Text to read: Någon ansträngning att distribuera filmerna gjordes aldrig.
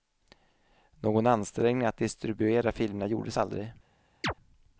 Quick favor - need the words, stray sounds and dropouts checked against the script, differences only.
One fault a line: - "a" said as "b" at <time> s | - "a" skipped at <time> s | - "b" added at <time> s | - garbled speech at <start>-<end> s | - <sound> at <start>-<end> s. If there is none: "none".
- chirp at 4.2-4.3 s